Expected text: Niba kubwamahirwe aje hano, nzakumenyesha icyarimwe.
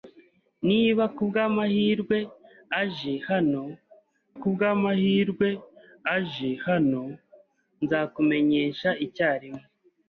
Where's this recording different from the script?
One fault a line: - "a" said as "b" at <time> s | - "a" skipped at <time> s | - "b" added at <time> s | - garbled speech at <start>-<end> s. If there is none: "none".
- "kubwamahirwe aje hano" added at 4.4 s